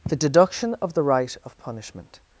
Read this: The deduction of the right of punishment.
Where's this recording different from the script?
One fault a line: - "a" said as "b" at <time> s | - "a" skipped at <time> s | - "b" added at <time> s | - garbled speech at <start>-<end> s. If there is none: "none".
none